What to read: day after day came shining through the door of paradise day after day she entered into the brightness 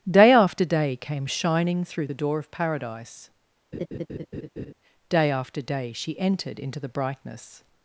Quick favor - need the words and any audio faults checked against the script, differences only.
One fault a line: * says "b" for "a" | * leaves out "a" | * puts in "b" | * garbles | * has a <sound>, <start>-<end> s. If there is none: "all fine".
* has a laugh, 3.7-4.7 s